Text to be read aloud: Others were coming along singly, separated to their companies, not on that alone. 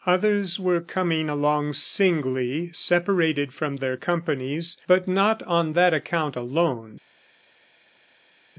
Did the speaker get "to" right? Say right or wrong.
wrong